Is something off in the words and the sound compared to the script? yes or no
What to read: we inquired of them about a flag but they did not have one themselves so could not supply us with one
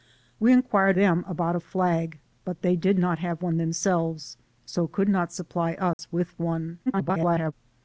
yes